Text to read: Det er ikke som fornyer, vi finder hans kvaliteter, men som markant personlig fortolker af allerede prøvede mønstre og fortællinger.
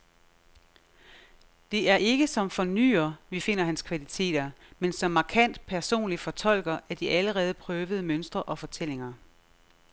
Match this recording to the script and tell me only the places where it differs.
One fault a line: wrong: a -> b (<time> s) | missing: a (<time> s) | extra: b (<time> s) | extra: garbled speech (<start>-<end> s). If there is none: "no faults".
extra: de (7.0 s)